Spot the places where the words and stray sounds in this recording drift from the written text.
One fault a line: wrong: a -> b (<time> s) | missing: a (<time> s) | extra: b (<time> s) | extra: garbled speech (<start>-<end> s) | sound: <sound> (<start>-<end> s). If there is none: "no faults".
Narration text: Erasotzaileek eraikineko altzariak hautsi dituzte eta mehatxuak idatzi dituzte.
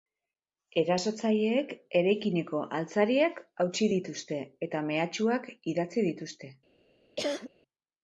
sound: cough (7.2-7.5 s)